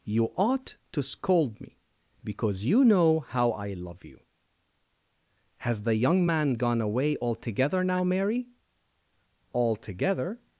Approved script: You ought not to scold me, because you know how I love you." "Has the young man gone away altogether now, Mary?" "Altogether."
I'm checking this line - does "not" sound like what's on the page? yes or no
no